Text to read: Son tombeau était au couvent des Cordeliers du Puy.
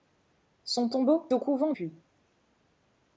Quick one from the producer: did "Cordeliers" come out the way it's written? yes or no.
no